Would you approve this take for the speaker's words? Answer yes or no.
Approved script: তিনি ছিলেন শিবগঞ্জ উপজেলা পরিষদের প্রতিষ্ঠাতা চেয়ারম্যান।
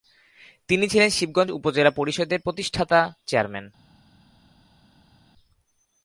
yes